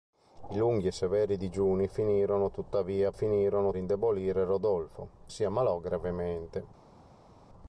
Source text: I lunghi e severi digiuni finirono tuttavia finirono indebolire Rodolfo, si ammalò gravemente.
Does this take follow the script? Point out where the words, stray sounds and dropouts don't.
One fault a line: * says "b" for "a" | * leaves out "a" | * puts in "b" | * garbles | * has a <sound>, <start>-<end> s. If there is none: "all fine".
all fine